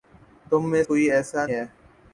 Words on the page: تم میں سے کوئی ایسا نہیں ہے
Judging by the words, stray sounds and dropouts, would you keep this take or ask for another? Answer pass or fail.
fail